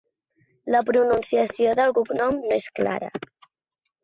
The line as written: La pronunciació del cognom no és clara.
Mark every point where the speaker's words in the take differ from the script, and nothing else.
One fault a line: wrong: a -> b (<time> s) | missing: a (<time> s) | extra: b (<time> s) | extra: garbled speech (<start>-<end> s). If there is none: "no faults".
no faults